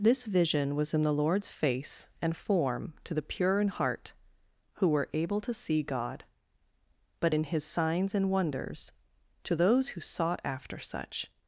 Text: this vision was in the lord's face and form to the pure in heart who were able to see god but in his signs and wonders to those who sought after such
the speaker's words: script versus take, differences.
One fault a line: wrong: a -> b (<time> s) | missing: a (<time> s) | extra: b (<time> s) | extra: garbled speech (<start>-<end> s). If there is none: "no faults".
no faults